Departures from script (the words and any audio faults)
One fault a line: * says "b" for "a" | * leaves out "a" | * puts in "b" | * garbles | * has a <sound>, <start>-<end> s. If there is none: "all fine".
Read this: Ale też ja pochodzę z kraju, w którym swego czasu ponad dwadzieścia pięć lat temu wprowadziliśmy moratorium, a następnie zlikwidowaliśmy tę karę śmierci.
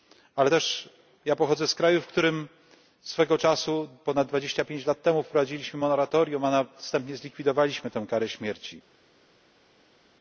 all fine